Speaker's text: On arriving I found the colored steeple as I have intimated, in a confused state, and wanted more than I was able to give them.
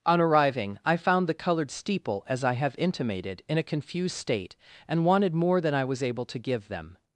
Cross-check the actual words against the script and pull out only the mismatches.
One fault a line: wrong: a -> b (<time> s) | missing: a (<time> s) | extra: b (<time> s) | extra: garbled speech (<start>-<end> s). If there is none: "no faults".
no faults